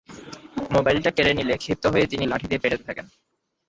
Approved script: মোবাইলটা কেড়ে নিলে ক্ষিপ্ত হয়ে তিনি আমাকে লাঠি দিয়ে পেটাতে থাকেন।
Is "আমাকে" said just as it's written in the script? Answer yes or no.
no